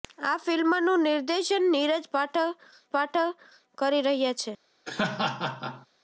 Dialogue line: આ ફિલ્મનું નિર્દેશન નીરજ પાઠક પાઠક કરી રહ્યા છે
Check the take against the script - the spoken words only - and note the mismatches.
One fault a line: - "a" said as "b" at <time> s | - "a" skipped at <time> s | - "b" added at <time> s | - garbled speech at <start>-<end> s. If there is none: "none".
none